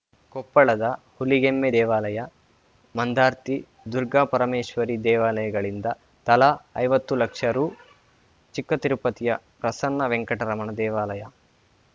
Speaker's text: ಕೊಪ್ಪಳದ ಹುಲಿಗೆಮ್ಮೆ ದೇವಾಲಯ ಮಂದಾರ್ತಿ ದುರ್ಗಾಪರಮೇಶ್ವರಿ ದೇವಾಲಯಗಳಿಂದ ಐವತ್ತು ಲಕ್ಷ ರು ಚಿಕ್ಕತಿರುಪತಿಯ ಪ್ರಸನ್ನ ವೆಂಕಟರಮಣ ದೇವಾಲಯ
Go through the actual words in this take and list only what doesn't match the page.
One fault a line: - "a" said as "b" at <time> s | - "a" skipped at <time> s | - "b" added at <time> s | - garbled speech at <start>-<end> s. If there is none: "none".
- "ತಲಾ" added at 6.3 s